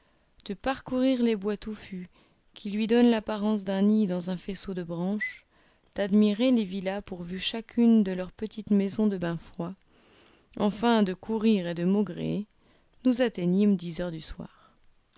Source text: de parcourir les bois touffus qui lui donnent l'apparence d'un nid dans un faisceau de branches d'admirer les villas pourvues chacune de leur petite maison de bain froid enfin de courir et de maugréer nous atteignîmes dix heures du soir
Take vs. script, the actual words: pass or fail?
pass